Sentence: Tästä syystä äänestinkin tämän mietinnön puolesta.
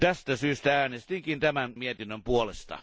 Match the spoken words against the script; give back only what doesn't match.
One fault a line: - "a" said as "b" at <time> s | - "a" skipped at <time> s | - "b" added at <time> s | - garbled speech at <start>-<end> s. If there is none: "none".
none